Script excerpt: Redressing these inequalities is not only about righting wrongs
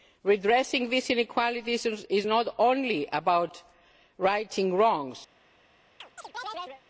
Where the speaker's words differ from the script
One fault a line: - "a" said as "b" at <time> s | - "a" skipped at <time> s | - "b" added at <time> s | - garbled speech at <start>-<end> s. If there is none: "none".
none